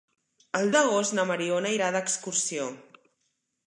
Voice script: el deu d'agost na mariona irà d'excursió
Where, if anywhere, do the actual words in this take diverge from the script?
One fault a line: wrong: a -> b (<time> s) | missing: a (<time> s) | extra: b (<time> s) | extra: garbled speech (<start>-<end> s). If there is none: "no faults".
missing: deu (0.7 s)